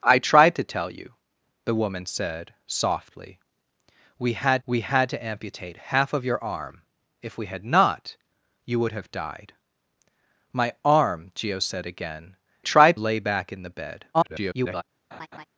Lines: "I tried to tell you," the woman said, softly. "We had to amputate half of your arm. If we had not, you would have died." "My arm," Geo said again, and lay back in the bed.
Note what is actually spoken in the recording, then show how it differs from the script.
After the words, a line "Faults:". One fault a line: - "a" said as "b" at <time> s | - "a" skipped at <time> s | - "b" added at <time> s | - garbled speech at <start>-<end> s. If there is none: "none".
"I tried to tell you," the woman said, softly. "We had we had to amputate half of your arm. If we had not, you would have died." "My arm," Geo said again, tried lay back in the bed. [garbled]
Faults:
- "we had" added at 4.6 s
- "and" said as "tried" at 12.6 s
- garbled speech at 14.1-14.8 s